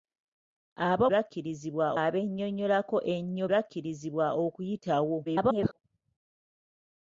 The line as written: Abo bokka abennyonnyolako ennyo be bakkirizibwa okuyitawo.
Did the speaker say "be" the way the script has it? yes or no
no